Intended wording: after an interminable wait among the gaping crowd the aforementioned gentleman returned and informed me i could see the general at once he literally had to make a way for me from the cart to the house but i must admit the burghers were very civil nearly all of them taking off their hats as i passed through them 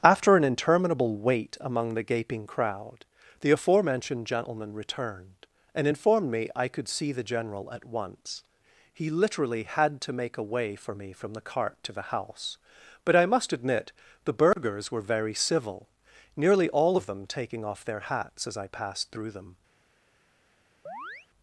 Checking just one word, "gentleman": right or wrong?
right